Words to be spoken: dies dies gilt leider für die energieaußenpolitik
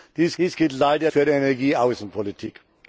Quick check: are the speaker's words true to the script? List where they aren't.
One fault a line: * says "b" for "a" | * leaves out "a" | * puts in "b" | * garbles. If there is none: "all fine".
all fine